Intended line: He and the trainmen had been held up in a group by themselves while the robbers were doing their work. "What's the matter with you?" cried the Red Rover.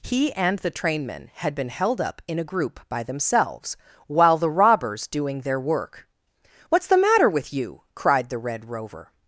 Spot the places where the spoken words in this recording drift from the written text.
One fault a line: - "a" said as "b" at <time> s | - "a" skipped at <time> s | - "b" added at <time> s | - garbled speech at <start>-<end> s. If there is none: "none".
- "were" skipped at 5.1 s